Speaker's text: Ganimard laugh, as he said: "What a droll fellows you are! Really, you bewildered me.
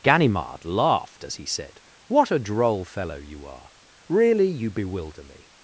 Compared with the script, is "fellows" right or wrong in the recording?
wrong